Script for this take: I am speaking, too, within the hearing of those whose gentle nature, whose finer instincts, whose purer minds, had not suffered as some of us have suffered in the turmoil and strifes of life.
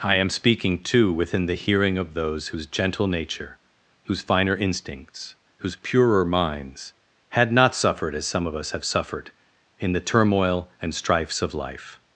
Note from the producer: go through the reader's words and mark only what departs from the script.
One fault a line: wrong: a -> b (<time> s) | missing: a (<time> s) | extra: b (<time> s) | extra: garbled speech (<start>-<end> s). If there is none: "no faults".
no faults